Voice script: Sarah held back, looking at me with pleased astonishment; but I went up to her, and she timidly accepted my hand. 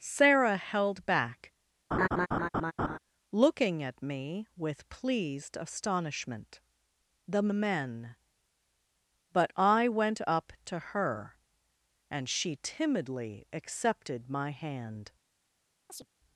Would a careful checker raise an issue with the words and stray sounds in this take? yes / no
yes